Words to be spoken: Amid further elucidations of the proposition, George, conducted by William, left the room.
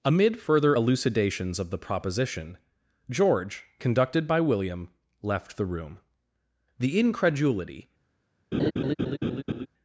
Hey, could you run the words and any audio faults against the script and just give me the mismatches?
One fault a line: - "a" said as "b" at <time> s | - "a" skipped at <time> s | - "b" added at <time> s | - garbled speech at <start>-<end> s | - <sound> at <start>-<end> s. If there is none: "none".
- "The incredulity" added at 6.8 s
- laugh at 8.5-9.7 s